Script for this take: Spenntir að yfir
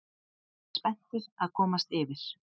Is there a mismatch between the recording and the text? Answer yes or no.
yes